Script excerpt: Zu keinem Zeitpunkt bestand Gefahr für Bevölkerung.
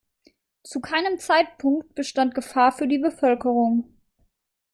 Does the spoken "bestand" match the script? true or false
true